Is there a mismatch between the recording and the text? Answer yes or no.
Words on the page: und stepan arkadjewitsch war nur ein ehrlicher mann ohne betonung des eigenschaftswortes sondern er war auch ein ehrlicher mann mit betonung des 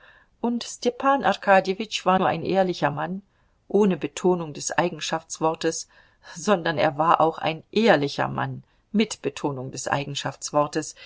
no